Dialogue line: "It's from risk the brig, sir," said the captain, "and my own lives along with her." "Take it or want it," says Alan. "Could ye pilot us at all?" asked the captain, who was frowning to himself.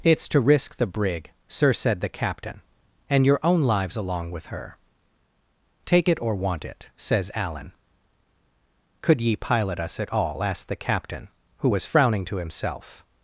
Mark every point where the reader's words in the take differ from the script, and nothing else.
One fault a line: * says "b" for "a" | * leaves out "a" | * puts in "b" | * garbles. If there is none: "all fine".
* says "to" for "from"
* says "your" for "my"